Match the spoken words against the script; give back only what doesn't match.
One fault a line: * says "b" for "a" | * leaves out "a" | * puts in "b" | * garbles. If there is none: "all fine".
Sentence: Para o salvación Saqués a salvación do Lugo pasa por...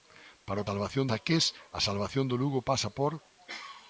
all fine